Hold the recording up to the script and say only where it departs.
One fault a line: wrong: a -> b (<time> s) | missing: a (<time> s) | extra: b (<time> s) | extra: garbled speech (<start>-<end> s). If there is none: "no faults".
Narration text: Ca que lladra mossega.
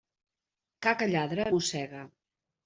no faults